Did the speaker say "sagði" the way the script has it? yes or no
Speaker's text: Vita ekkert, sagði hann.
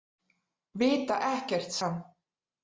no